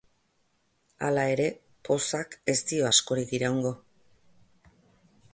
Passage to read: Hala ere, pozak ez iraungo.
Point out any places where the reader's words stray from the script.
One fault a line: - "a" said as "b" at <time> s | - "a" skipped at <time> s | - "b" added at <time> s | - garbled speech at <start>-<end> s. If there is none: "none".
- "dio askorik" added at 2.7 s